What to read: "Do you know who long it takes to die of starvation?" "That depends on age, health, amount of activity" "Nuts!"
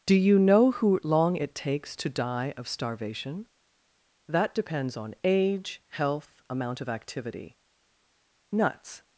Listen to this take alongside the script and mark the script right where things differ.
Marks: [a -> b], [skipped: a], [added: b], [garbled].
"Do you know who long it takes to die of starvation?" "That depends on age, health, amount of activity" "Nuts!"